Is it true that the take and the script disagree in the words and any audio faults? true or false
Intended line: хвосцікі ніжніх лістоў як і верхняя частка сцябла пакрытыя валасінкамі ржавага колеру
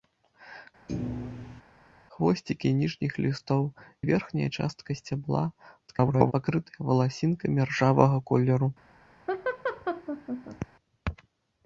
true